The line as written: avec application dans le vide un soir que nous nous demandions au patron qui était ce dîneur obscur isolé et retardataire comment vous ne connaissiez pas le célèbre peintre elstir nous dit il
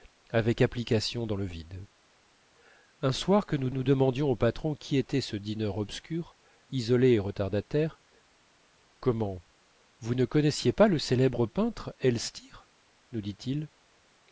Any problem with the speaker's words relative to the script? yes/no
no